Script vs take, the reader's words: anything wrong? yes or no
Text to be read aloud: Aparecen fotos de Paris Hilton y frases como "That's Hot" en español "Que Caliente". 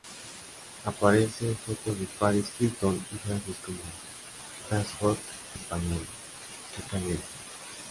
yes